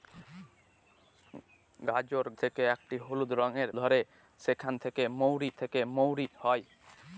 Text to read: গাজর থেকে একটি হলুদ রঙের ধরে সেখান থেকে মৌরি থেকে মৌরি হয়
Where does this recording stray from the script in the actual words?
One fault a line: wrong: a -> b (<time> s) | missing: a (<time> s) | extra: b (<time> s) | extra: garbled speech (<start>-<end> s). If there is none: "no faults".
no faults